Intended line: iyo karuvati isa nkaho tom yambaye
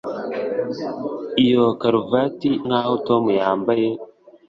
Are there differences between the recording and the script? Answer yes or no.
yes